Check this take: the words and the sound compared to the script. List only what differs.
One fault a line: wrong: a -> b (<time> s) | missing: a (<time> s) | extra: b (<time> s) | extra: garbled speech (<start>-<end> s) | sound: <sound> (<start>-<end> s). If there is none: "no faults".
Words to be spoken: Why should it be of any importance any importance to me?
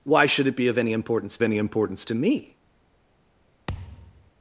sound: thud (3.7-4.3 s)